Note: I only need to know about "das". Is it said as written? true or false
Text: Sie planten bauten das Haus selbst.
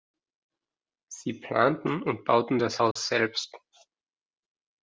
true